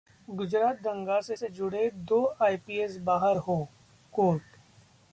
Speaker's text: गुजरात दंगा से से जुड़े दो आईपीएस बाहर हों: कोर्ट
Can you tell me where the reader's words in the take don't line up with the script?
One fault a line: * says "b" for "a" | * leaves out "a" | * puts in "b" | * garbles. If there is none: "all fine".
all fine